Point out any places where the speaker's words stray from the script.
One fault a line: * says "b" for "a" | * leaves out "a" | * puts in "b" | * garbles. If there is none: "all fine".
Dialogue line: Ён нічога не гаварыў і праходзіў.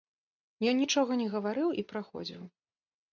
all fine